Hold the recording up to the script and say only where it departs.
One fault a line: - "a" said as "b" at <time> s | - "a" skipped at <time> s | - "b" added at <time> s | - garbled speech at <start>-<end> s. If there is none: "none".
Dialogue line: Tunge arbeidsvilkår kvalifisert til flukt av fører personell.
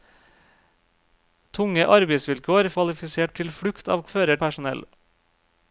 none